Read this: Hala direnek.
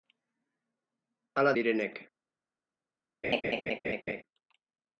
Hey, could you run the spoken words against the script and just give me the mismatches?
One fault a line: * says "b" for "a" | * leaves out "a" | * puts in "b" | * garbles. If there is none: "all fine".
all fine